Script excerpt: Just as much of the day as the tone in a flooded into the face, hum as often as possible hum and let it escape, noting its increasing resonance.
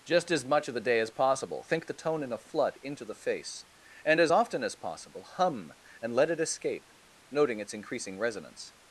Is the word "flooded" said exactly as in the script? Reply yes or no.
no